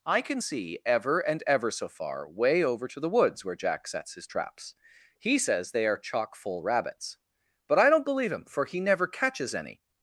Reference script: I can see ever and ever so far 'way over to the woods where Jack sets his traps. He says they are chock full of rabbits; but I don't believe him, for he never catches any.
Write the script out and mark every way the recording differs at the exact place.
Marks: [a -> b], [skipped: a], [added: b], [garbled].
I can see ever and ever so far 'way over to the woods where Jack sets his traps. He says they are chock full [skipped: of] rabbits; but I don't believe him, for he never catches any.